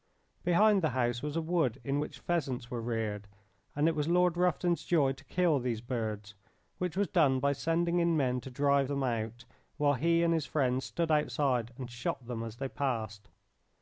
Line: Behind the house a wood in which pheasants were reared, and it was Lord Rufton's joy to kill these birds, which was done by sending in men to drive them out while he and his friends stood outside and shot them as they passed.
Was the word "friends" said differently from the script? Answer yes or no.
no